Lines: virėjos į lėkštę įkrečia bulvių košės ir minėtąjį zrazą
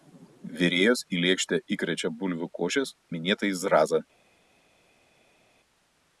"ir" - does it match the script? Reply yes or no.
no